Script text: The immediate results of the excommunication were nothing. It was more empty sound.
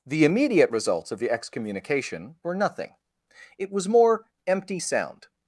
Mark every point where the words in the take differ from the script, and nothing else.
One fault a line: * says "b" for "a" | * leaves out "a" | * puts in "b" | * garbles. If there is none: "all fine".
all fine